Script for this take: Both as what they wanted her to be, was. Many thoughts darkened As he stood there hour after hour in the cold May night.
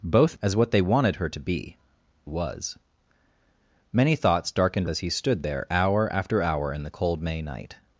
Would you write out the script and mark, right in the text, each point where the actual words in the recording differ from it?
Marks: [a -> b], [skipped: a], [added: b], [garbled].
Both as what they wanted her to be, was. Many thoughts darkened As he stood there hour after hour in the cold May night.